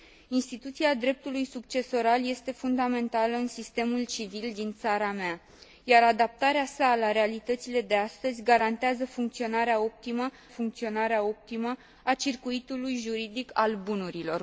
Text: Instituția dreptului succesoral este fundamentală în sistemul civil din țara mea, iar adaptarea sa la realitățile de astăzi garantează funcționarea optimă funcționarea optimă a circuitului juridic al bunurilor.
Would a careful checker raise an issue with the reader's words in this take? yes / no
no